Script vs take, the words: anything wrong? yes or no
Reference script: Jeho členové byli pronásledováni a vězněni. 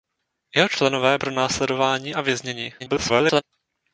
yes